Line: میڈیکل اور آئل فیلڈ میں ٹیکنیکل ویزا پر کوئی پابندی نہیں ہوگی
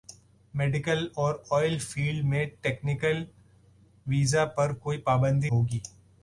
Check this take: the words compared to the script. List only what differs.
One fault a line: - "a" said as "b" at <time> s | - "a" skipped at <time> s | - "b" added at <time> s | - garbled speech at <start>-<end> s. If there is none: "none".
- "نہیں" skipped at 5.5 s